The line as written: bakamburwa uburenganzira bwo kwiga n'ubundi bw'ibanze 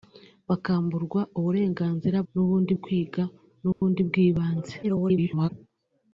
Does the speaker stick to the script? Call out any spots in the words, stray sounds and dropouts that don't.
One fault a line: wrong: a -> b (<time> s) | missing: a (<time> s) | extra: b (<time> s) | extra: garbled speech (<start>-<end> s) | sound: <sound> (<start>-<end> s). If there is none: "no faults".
wrong: bwo -> n'ubundi (2.3 s)
sound: dropout (3.7-3.8 s)
extra: garbled speech (4.8-5.5 s)